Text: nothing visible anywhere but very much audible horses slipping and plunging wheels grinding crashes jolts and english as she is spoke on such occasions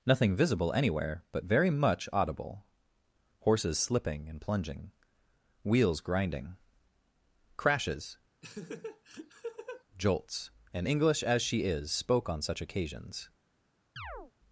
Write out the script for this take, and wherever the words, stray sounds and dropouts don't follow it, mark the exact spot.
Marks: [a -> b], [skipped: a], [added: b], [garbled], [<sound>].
nothing visible anywhere but very much audible horses slipping and plunging wheels grinding crashes [laugh] jolts and english as she is spoke on such occasions [chirp]